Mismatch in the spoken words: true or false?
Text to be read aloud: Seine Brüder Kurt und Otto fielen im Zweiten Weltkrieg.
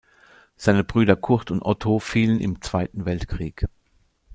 false